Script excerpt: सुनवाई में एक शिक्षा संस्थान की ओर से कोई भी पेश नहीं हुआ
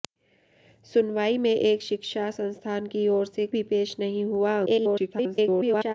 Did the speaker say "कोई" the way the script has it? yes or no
no